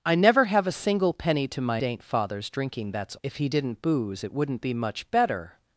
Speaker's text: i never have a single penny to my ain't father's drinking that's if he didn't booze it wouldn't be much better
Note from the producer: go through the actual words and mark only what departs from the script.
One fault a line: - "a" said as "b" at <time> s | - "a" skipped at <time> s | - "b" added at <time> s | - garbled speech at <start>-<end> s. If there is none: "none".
none